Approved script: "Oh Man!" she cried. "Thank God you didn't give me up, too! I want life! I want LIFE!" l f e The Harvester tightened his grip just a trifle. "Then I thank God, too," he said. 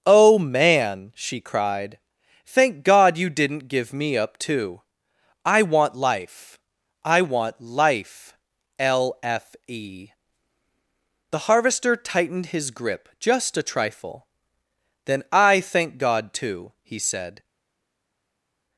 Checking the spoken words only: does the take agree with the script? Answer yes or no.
yes